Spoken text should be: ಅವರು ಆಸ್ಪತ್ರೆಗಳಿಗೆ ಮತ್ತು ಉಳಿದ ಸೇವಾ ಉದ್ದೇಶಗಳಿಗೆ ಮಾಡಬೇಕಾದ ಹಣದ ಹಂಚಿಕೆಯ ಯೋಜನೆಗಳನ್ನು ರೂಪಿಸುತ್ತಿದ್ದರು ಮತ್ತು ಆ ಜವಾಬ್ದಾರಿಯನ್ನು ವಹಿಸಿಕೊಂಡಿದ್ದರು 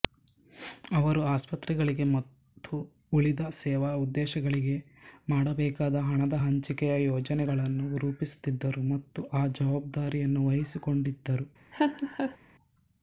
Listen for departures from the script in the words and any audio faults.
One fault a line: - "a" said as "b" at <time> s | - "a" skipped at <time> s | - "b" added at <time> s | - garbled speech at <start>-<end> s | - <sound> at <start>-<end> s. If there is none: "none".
- laugh at 11.7-12.4 s